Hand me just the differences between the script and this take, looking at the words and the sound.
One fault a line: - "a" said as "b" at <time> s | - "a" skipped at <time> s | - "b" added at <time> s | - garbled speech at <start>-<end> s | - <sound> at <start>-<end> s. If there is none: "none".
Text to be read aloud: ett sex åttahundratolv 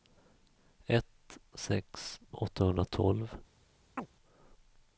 - chirp at 4.0-4.1 s